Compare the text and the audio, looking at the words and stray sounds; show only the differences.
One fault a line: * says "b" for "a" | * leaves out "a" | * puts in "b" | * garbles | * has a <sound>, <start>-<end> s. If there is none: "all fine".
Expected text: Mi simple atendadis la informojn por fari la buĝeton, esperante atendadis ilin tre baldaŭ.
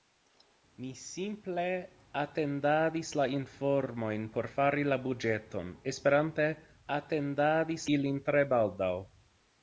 all fine